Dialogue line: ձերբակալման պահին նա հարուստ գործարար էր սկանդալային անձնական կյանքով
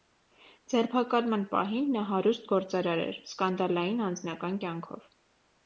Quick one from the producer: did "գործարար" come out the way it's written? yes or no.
yes